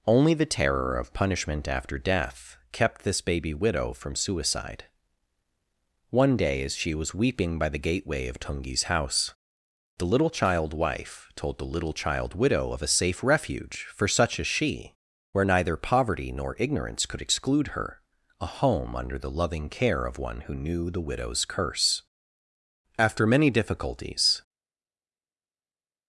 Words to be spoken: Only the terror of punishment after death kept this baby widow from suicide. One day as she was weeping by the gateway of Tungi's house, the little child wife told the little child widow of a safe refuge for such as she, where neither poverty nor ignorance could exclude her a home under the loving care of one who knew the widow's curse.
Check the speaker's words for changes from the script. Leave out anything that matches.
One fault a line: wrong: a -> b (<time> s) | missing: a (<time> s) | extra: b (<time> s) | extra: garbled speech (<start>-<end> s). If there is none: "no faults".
extra: After many difficulties (23.0 s)